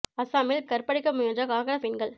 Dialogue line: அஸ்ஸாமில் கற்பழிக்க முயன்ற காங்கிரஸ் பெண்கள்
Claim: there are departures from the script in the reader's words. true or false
false